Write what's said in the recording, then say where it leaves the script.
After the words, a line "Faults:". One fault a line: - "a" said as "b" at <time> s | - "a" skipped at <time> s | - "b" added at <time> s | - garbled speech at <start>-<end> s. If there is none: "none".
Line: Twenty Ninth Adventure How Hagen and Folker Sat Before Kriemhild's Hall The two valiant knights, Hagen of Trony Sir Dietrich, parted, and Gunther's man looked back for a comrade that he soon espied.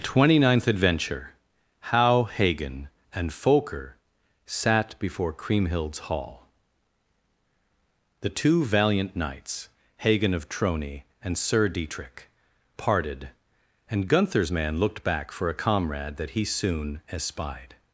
Twenty Ninth Adventure How Hagen and Folker Sat Before Kriemhild's Hall The two valiant knights, Hagen of Trony and Sir Dietrich, parted, and Gunther's man looked back for a comrade that he soon espied.
Faults:
- "and" added at 11.2 s